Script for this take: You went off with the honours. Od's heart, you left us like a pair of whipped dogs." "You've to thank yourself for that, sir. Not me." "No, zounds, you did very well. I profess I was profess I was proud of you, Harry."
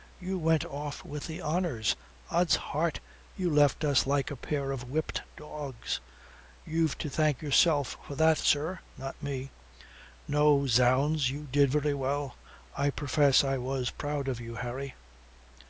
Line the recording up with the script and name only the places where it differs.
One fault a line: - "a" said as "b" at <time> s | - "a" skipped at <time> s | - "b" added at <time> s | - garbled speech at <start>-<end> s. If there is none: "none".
- "profess I was" skipped at 13.9 s